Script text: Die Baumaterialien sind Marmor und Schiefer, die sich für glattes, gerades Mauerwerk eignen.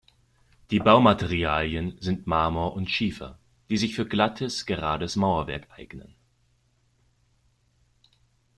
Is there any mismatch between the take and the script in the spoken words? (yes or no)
no